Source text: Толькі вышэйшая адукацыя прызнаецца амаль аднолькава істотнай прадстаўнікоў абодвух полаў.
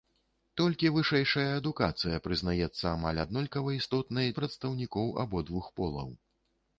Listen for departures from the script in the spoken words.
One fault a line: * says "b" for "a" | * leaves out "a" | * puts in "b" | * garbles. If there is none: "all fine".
all fine